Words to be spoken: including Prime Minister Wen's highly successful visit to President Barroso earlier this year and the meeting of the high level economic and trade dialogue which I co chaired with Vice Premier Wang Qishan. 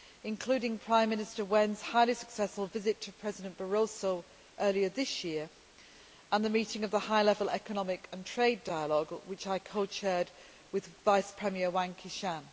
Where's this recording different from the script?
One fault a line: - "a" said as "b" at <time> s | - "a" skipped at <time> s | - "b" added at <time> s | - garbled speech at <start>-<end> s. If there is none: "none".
none